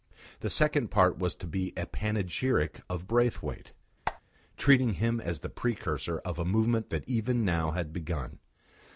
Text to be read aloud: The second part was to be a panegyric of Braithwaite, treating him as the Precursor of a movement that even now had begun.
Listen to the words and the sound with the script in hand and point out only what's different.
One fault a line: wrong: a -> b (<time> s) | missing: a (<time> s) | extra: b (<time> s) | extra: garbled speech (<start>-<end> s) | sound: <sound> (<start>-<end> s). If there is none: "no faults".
sound: squeak (4.1-4.2 s)